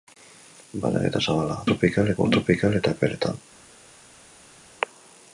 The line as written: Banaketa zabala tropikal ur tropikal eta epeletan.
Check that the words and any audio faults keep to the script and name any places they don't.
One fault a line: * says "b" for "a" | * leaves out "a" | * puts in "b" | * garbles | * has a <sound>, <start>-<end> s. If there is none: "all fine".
all fine